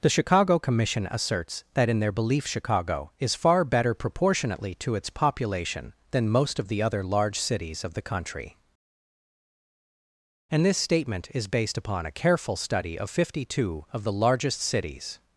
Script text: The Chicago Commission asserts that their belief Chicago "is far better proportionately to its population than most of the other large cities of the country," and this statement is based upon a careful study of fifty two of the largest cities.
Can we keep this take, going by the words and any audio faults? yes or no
no